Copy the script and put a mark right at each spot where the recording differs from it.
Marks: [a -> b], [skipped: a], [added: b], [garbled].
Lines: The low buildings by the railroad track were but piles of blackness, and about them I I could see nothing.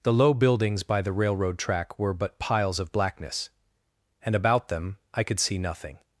The low buildings by the railroad track were but piles of blackness, and about them I [skipped: I] could see nothing.